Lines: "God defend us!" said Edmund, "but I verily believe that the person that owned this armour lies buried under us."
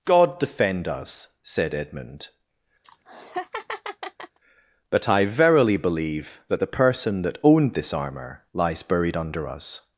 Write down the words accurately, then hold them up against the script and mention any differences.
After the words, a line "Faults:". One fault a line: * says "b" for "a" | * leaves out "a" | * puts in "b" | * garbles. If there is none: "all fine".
"God defend us!" said Edmund, "but I verily believe that the person that owned this armour lies buried under us."
Faults:
all fine